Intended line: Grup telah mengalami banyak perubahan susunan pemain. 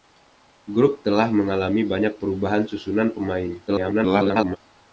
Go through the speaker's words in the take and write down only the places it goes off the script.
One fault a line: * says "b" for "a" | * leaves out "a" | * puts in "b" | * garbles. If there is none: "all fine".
* garbles